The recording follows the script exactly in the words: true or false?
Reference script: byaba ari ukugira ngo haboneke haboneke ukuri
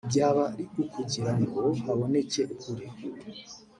false